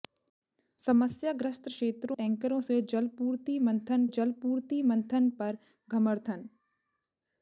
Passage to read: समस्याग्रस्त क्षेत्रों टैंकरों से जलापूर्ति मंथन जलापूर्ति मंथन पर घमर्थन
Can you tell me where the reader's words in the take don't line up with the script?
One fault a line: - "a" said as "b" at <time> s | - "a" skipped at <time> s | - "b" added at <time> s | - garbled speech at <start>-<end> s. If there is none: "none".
none